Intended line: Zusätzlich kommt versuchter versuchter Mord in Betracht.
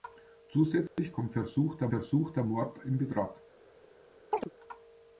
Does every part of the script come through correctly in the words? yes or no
yes